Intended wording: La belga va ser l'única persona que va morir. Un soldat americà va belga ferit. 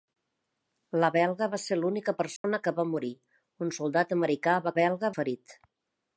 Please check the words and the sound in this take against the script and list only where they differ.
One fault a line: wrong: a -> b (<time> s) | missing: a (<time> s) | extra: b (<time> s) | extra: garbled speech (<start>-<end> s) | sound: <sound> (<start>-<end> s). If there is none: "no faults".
sound: dropout (2.4-2.4 s)